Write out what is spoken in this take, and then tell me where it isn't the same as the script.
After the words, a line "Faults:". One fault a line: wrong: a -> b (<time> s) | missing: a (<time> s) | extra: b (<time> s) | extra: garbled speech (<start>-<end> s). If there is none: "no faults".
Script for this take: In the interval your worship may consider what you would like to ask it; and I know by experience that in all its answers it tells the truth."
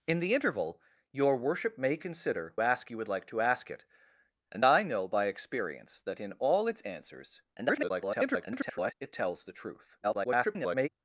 In the interval your worship may consider ask you would like to ask it; and I know by experience that in all its answers [garbled] it tells the truth." [garbled]
Faults:
wrong: what -> ask (2.6 s)
extra: garbled speech (7.6-8.9 s)
extra: garbled speech (10.0-10.9 s)